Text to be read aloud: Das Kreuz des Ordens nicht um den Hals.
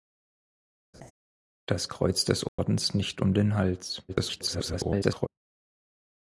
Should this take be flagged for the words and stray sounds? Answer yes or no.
yes